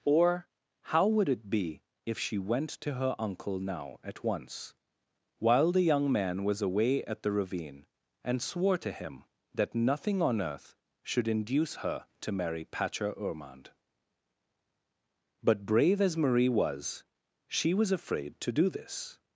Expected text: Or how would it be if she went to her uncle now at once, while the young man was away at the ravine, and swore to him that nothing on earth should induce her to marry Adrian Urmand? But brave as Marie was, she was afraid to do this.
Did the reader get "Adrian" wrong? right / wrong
wrong